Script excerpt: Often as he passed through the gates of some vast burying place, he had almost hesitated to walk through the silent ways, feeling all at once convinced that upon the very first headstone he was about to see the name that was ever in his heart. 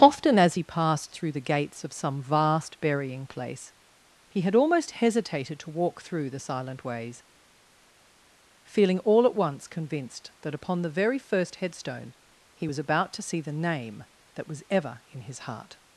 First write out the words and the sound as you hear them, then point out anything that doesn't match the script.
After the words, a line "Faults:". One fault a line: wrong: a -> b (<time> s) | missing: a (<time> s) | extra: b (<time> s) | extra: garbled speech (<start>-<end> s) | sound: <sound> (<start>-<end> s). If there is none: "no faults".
Often as he passed through the gates of some vast burying place, he had almost hesitated to walk through the silent ways, feeling all at once convinced that upon the very first headstone he was about to see the name that was ever in his heart.
Faults:
no faults